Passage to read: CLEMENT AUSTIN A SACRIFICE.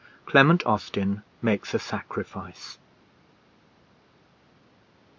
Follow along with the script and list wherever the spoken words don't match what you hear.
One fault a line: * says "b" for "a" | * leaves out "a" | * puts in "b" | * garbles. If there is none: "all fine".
* puts in "MAKES"